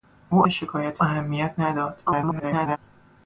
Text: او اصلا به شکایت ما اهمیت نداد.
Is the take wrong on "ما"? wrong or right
wrong